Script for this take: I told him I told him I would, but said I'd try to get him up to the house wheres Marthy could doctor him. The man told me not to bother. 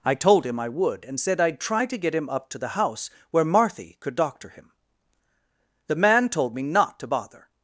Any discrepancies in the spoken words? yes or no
yes